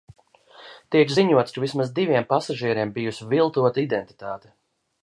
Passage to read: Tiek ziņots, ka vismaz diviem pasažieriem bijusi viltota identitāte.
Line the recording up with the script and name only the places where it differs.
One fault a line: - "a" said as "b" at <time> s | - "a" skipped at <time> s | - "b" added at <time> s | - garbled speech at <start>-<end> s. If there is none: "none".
none